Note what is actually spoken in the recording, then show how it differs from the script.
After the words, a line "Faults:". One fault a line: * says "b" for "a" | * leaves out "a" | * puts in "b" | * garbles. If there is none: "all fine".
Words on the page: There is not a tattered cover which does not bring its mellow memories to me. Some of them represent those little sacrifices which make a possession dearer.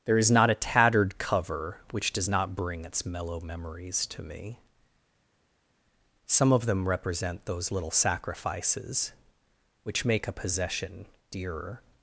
There is not a tattered cover which does not bring its mellow memories to me. Some of them represent those little sacrifices which make a possession dearer.
Faults:
all fine